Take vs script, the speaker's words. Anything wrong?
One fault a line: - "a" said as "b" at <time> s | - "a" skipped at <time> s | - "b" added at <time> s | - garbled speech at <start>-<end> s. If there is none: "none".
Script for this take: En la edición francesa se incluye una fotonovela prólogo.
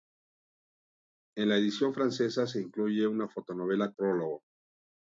none